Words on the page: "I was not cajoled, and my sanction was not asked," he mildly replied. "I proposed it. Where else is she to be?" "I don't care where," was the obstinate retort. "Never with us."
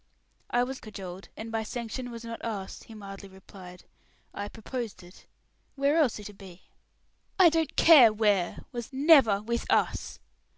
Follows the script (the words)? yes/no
no